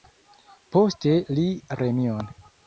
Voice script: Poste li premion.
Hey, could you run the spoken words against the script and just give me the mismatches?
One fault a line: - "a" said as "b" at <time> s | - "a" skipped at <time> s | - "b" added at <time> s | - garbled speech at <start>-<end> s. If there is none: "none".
none